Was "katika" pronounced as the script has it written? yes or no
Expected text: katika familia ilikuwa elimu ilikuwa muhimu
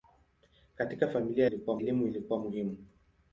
yes